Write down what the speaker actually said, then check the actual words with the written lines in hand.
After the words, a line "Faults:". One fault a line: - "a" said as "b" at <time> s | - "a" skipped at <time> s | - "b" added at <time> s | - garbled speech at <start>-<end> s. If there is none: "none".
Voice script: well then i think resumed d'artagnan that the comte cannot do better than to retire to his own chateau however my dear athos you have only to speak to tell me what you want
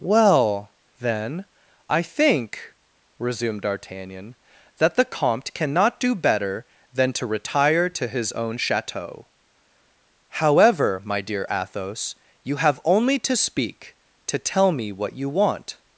well then i think resumed d'artagnan that the comte cannot do better than to retire to his own chateau however my dear athos you have only to speak to tell me what you want
Faults:
none